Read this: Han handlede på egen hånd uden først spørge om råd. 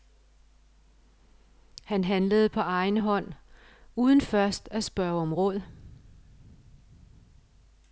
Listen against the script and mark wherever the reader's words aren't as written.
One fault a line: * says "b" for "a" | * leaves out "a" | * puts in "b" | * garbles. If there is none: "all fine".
* puts in "at"